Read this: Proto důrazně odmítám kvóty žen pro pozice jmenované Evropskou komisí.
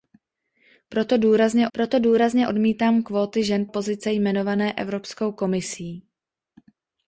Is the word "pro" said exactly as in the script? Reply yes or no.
no